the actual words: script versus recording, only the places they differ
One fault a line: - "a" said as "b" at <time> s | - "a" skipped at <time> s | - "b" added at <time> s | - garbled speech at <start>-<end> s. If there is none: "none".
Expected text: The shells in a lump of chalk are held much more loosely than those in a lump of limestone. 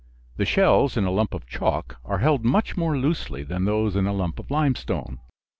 none